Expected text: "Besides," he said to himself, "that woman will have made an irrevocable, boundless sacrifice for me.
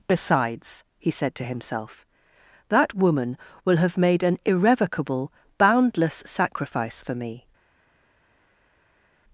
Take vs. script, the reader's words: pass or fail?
pass